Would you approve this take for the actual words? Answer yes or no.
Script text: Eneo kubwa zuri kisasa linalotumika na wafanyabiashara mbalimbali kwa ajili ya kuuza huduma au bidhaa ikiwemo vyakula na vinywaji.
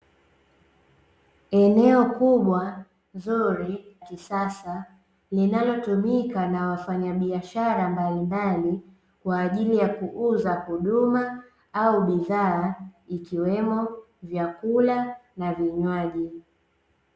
yes